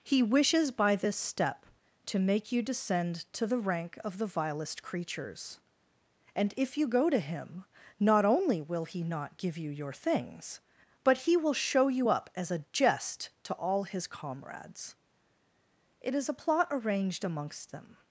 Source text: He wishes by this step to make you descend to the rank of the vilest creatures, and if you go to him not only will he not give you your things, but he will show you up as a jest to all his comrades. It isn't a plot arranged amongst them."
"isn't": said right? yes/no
no